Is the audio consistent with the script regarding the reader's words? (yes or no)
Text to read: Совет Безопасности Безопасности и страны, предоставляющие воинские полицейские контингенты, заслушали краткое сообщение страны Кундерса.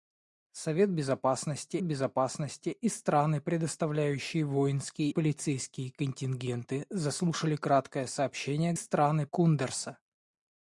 yes